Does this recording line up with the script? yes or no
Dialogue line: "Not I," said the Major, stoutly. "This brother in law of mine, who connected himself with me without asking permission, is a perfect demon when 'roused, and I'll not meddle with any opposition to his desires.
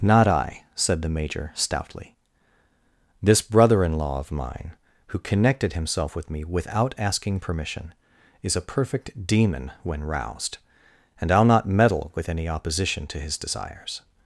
yes